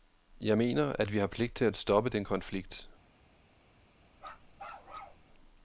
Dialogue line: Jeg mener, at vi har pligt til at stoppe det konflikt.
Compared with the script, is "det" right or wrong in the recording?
wrong